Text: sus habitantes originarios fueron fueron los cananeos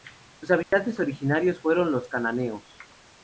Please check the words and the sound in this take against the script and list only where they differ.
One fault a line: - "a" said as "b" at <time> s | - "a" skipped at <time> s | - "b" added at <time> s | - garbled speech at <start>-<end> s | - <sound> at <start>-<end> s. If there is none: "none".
- dropout at 0.6-0.7 s
- "fueron" skipped at 1.9 s